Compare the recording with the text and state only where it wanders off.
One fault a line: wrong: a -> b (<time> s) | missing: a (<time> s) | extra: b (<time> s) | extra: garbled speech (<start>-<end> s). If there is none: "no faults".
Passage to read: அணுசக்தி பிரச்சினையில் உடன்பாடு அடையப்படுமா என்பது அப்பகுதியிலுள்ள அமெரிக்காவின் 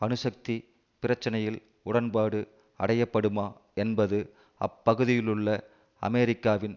no faults